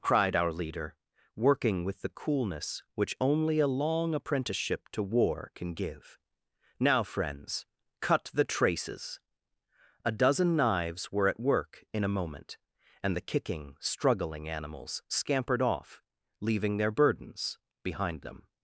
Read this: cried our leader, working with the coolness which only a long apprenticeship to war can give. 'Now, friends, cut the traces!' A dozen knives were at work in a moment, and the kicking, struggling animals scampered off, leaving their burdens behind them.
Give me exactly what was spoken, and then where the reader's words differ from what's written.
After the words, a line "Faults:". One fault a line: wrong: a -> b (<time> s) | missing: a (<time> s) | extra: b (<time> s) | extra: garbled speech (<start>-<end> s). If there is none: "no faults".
cried our leader, working with the coolness which only a long apprenticeship to war can give. 'Now, friends, cut the traces!' A dozen knives were at work in a moment, and the kicking, struggling animals scampered off, leaving their burdens behind them.
Faults:
no faults